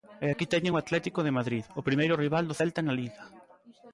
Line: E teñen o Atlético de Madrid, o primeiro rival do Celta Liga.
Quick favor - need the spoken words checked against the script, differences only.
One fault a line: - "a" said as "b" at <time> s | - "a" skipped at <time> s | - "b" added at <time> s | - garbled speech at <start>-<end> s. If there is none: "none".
- "aquí" added at 0.3 s
- "na" added at 2.8 s